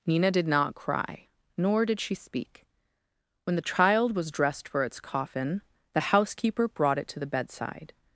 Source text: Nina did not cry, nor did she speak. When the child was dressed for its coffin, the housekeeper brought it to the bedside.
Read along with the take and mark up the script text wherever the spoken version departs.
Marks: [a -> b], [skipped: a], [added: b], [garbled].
Nina did not cry, nor did she speak. When the child was dressed for its coffin, the housekeeper brought it to the bedside.